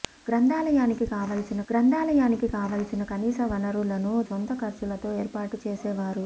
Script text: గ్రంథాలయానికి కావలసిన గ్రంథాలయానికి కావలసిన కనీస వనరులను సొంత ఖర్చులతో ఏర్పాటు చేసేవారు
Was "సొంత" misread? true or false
false